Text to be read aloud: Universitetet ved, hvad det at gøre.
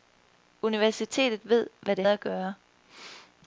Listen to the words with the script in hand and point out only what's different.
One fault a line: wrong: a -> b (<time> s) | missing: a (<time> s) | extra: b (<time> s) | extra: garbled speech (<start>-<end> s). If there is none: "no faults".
no faults